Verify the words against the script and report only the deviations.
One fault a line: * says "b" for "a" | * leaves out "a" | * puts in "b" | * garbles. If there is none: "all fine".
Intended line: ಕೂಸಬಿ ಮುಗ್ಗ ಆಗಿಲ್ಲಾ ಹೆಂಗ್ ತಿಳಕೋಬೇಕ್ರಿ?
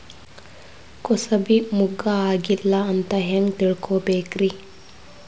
* puts in "ಅಂತ"